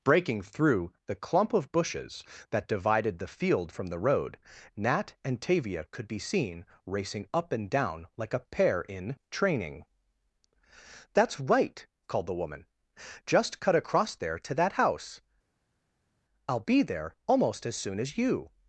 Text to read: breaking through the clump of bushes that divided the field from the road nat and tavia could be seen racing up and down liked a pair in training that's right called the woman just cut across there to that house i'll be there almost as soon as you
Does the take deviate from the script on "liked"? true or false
true